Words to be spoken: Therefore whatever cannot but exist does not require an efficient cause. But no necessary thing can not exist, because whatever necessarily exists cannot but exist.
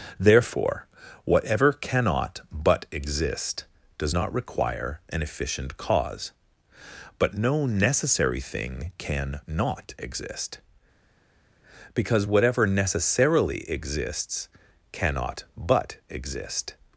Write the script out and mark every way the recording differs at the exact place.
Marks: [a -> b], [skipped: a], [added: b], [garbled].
Therefore whatever cannot but exist does not require an efficient cause. But no necessary thing can not exist, because whatever necessarily exists cannot but exist.